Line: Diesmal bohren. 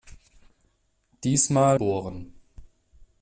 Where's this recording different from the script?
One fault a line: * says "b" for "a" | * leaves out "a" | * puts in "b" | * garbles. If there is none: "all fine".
all fine